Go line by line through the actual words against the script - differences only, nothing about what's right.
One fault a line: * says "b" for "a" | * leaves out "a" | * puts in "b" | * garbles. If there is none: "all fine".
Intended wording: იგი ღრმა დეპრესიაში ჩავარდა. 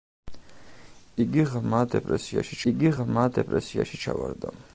* puts in "იგი ღრმა დეპრესიაში"